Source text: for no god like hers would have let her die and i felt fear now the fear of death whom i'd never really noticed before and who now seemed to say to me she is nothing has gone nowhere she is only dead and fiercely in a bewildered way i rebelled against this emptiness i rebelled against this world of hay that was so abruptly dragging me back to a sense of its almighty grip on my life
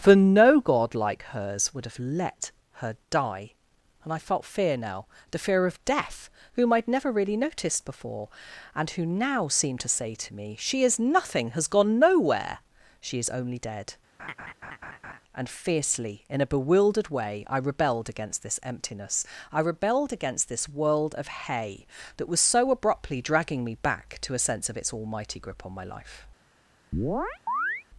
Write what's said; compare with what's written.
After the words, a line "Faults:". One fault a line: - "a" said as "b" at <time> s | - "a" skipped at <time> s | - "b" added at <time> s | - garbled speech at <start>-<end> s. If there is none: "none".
for no god like hers would have let her die and i felt fear now the fear of death whom i'd never really noticed before and who now seemed to say to me she is nothing has gone nowhere she is only dead and fiercely in a bewildered way i rebelled against this emptiness i rebelled against this world of hay that was so abruptly dragging me back to a sense of its almighty grip on my life
Faults:
none